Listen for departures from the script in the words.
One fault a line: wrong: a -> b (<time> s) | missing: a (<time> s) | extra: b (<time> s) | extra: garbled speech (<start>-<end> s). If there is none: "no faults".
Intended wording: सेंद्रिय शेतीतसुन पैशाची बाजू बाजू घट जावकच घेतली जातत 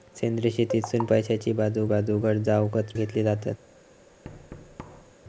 no faults